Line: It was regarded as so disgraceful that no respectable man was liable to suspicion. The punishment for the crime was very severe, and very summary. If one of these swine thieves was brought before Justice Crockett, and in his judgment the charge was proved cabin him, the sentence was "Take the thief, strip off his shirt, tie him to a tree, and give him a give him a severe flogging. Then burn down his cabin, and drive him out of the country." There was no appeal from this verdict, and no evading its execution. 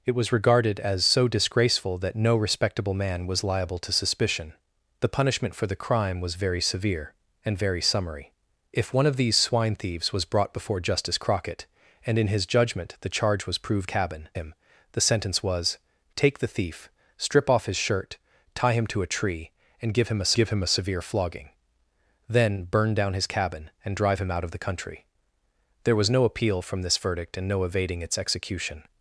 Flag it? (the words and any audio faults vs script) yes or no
no